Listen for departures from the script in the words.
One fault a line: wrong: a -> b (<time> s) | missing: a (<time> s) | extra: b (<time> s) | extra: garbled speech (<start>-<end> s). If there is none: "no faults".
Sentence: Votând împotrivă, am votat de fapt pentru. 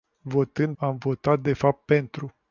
missing: împotrivă (0.8 s)